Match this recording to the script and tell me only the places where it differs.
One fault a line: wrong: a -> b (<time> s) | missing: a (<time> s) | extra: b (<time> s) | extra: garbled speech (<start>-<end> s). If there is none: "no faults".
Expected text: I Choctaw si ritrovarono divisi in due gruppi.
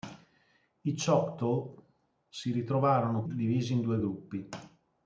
no faults